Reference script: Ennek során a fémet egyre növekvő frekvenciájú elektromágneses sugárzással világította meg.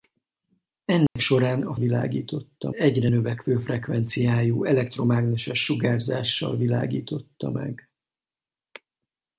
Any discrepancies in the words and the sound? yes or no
yes